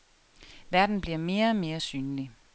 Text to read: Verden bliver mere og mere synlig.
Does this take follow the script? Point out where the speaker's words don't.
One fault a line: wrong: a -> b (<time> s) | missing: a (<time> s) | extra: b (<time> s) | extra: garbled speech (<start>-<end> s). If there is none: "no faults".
no faults